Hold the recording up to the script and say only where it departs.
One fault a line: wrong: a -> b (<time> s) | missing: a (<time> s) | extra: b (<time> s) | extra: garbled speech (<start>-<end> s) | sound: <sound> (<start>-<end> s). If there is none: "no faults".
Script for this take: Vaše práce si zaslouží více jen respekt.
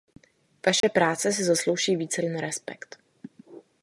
sound: dropout (0.8-0.8 s)